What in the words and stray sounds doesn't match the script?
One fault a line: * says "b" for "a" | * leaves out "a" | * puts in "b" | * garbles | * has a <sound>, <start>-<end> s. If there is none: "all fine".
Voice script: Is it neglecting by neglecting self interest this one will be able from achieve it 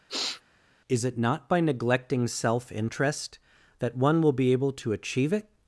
* has a sniff, 0.1-0.4 s
* says "not" for "neglecting"
* says "that" for "this"
* says "to" for "from"